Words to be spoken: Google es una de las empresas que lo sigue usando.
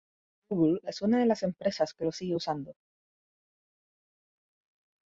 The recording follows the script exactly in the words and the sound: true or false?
true